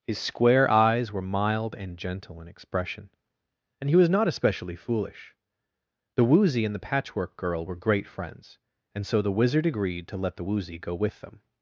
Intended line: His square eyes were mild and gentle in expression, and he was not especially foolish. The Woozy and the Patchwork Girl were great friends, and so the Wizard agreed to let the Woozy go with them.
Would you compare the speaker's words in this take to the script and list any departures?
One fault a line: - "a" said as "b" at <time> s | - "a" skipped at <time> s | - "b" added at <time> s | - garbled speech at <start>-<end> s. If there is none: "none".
none